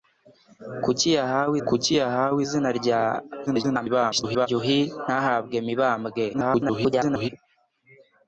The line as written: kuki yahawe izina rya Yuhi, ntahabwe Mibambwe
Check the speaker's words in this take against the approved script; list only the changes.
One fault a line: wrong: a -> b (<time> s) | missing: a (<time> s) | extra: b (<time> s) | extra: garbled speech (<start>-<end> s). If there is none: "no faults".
extra: kuki yahawe (1.7 s)
extra: garbled speech (3.5-4.5 s)
extra: garbled speech (6.3-7.3 s)